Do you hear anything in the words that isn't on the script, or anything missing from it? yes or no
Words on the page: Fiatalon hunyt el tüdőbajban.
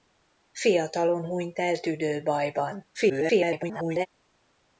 yes